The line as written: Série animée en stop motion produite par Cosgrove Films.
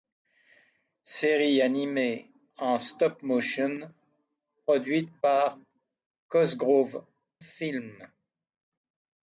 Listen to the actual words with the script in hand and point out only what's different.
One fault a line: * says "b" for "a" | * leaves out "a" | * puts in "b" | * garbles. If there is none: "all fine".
all fine